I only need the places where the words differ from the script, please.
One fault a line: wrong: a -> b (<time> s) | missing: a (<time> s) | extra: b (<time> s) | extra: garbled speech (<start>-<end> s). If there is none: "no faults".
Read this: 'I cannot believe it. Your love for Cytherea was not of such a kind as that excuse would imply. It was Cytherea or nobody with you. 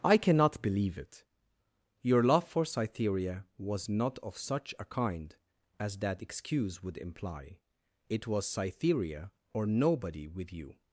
no faults